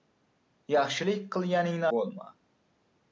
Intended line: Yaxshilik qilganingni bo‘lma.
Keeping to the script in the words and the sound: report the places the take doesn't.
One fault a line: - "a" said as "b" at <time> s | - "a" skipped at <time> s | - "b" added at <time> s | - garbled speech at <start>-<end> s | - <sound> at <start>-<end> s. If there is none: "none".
none